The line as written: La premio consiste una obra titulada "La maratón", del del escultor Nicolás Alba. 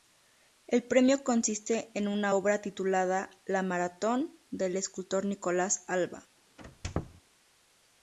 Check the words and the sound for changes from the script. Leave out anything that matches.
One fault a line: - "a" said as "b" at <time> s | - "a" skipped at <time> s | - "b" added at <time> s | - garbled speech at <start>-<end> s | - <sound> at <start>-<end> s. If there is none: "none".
- "La" said as "El" at 0.7 s
- "en" added at 1.9 s
- "del" skipped at 4.8 s
- squeak at 6.6-7.2 s